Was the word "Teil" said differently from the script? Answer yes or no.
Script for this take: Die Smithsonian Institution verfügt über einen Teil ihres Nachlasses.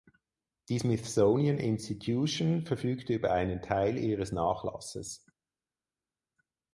no